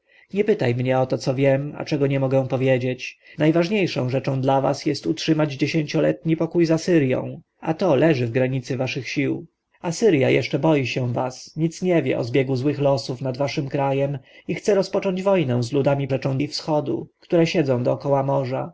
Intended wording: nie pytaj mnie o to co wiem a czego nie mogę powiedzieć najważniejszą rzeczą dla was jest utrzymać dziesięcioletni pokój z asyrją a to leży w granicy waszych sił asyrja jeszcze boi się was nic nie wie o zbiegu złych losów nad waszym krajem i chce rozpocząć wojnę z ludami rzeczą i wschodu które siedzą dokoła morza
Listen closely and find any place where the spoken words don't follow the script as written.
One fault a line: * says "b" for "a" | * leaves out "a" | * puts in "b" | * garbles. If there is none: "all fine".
all fine